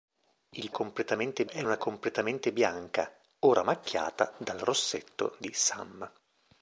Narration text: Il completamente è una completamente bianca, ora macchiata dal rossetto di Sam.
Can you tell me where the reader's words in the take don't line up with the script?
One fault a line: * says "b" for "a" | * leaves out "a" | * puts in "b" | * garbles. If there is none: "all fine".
all fine